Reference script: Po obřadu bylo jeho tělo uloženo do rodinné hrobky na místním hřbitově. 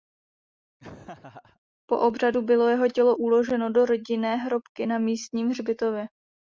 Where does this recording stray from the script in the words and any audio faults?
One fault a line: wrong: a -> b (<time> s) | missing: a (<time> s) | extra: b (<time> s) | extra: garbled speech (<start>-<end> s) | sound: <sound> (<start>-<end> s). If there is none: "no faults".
sound: laugh (0.8-1.6 s)